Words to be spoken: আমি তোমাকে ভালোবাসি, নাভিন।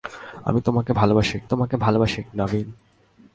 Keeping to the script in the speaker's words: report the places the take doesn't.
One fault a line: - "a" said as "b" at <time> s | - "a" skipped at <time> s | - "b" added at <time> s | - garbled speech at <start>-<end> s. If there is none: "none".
- "তোমাকে ভালোবাসি" added at 1.5 s